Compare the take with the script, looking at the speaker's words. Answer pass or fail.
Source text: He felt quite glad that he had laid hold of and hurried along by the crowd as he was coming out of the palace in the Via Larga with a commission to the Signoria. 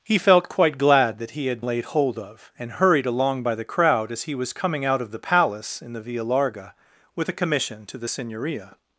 pass